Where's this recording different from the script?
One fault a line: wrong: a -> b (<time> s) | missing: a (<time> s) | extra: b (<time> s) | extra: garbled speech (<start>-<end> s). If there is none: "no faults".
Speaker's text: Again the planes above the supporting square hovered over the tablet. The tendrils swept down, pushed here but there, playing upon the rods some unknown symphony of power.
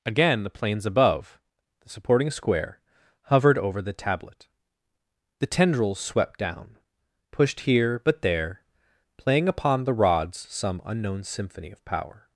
no faults